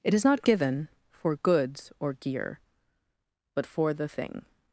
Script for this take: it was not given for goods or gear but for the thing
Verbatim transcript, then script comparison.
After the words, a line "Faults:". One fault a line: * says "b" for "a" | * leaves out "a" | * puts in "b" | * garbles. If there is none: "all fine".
it is not given for goods or gear but for the thing
Faults:
* says "is" for "was"